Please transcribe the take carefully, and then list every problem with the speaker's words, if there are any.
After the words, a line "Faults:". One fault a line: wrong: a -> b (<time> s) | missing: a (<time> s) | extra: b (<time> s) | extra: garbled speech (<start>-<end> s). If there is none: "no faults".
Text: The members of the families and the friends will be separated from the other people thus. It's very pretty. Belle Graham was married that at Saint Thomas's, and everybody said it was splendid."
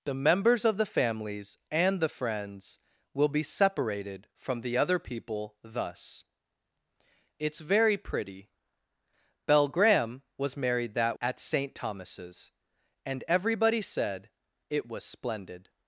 The members of the families and the friends will be separated from the other people thus. It's very pretty. Belle Graham was married that at Saint Thomas's, and everybody said it was splendid."
Faults:
no faults